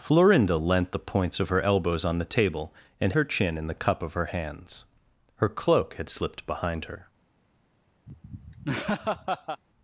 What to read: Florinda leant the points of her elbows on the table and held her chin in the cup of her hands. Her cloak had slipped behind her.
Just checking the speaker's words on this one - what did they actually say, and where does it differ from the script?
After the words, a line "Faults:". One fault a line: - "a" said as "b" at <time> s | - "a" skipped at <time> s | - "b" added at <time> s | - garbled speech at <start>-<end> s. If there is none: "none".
Florinda leant the points of her elbows on the table and her chin in the cup of her hands. Her cloak had slipped behind her.
Faults:
- "held" skipped at 3.1 s